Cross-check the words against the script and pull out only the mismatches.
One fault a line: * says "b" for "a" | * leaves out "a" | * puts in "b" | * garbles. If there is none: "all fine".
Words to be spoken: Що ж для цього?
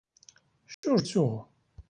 * leaves out "для"